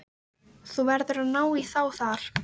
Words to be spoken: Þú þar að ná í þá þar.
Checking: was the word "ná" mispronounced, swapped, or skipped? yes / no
no